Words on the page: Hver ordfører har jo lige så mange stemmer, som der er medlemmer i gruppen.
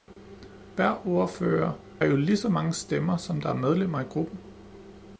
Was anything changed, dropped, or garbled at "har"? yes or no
yes